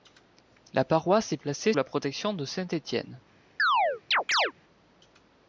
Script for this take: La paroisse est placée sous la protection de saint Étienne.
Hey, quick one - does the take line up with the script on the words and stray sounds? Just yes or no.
no